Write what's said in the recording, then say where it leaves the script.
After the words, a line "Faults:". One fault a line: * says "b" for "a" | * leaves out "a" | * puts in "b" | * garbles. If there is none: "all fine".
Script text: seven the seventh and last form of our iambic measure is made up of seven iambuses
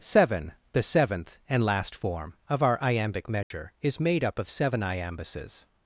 seven the seventh and last form of our iambic measure is made up of seven iambuses
Faults:
all fine